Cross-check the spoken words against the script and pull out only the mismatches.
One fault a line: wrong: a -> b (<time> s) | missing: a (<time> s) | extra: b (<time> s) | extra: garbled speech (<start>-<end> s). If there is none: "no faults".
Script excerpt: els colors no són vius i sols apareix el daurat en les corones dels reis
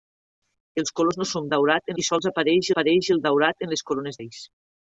wrong: vius -> daurat (1.5 s)
extra: apareix (2.7 s)
missing: dels (4.2 s)